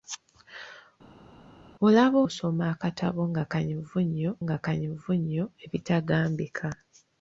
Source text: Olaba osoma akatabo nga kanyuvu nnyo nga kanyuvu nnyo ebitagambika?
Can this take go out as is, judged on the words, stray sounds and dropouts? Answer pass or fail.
pass